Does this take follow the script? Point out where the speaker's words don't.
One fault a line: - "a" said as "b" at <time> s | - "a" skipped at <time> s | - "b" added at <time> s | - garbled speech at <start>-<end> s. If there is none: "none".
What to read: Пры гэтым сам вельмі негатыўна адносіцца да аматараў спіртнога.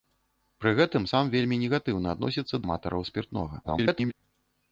- "да" skipped at 2.6 s
- garbled speech at 3.6-4.1 s